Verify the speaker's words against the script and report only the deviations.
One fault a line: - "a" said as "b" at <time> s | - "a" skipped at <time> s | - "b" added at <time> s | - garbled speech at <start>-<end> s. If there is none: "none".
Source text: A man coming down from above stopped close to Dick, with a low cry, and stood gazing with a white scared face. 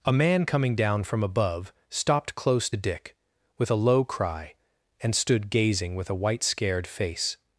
- "to" skipped at 2.7 s